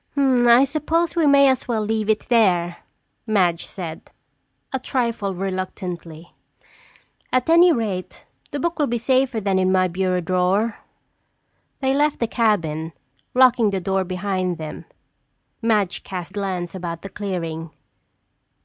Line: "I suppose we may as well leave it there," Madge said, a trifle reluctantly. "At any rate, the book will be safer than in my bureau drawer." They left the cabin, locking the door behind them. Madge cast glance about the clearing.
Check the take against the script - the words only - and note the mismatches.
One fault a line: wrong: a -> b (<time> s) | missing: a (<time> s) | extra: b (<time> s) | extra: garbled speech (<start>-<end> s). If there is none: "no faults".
no faults